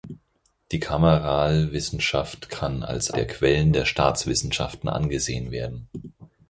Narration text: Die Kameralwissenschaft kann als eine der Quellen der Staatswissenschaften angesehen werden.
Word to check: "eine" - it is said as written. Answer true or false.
false